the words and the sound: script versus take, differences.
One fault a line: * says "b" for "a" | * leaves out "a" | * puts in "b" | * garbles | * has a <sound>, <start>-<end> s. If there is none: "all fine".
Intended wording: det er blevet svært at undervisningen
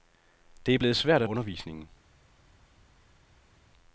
all fine